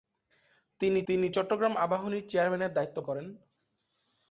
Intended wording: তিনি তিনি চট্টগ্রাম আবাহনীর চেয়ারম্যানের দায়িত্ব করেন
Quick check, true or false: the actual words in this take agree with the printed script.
true